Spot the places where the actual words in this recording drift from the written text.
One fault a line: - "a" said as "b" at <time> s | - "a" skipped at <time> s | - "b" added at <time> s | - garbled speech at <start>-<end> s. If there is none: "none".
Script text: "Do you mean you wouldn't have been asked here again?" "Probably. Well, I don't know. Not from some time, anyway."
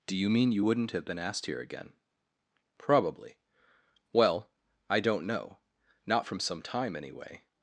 none